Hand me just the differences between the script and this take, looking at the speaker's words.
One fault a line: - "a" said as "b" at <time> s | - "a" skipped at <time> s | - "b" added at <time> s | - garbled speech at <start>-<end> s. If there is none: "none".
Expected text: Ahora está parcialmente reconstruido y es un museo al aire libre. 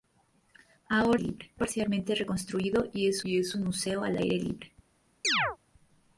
- "está" said as "libre" at 1.2 s
- "y es" added at 3.2 s